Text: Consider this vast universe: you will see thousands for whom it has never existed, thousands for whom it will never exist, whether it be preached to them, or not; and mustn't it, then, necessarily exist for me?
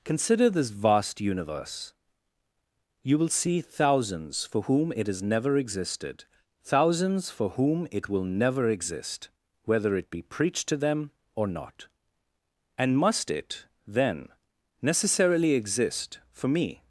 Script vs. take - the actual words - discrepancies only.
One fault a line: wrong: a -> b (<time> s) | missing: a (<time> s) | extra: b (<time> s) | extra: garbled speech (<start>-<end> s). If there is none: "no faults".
wrong: mustn't -> must (13.0 s)